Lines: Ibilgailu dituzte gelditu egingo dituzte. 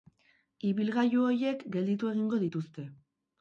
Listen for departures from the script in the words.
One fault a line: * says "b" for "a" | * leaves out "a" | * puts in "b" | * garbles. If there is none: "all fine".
* says "horiek" for "dituzte"